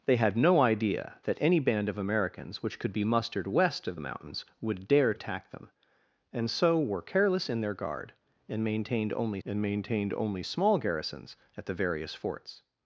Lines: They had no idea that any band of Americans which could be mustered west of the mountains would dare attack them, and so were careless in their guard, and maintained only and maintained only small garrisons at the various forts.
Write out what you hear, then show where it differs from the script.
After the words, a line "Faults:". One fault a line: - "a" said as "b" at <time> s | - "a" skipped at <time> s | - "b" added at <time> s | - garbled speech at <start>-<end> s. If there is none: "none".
They had no idea that any band of Americans which could be mustered west of the mountains would dare attack them, and so were careless in their guard, and maintained only and maintained only small garrisons at the various forts.
Faults:
none